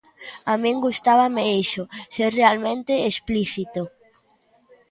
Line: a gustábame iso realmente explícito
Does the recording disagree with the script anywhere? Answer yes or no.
yes